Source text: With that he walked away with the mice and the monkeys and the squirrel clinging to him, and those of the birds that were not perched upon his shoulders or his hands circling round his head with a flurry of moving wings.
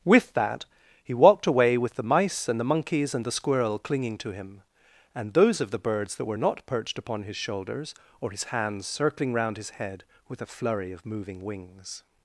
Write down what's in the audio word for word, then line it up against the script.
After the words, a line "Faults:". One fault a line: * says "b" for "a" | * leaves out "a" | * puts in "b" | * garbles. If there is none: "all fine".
With that he walked away with the mice and the monkeys and the squirrel clinging to him, and those of the birds that were not perched upon his shoulders or his hands circling round his head with a flurry of moving wings.
Faults:
all fine